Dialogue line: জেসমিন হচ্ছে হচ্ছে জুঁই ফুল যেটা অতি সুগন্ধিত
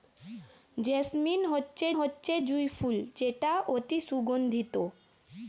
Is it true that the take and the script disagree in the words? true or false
false